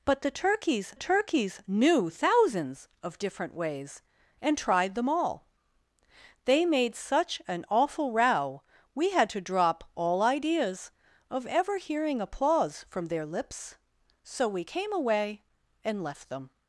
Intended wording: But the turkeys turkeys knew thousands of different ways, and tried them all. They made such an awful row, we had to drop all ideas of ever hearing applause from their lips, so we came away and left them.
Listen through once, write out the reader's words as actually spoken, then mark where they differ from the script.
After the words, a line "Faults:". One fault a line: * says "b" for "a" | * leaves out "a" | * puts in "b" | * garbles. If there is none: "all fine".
But the turkeys turkeys knew thousands of different ways, and tried them all. They made such an awful row, we had to drop all ideas of ever hearing applause from their lips, so we came away and left them.
Faults:
all fine